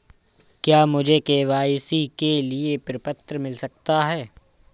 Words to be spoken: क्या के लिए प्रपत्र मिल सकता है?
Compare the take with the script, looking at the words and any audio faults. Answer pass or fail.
fail